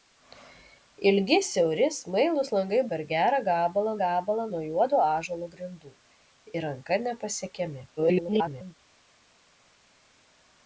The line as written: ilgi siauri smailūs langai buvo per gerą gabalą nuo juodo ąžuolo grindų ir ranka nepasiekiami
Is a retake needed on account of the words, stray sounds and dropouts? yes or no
yes